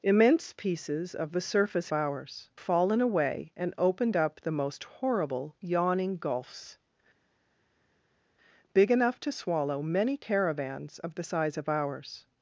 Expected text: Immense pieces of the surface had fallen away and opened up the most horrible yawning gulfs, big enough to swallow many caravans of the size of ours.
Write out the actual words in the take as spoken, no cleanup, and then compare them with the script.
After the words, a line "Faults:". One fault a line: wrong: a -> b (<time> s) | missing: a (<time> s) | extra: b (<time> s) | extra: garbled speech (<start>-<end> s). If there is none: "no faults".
Immense pieces of the surface ours fallen away and opened up the most horrible yawning gulfs, big enough to swallow many caravans of the size of ours.
Faults:
wrong: had -> ours (1.9 s)